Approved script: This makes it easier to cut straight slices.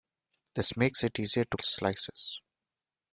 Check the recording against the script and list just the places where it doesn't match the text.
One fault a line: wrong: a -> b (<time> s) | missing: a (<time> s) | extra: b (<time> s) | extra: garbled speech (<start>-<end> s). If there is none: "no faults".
missing: cut straight (1.6 s)